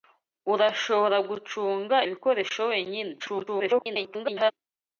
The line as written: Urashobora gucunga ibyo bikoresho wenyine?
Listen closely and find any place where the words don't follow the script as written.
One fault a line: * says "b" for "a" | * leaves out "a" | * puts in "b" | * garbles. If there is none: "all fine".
* leaves out "ibyo"
* garbles